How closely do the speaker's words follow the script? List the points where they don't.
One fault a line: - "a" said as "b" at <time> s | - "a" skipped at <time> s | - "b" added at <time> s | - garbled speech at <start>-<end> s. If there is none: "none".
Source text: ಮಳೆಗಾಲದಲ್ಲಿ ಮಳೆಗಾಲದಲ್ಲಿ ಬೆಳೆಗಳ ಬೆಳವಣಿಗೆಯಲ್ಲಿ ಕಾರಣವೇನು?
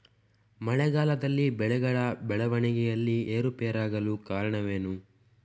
- "ಮಳೆಗಾಲದಲ್ಲಿ" skipped at 1.5 s
- "ಏರುಪೇರಾಗಲು" added at 3.3 s